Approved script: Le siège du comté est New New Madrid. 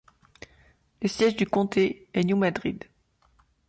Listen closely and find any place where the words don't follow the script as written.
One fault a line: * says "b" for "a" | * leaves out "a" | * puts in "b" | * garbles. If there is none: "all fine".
* leaves out "New"